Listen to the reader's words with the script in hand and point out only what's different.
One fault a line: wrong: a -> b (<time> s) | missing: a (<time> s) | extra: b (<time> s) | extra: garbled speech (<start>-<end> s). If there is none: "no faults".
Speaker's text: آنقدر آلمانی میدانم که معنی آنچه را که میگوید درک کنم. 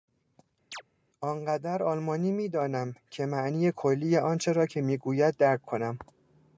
extra: کلی (3.7 s)